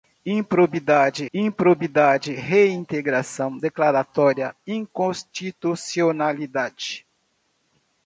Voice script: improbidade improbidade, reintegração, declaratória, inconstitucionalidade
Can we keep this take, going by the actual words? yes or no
yes